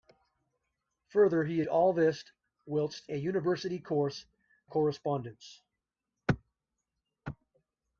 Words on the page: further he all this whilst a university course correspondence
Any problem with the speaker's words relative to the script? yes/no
no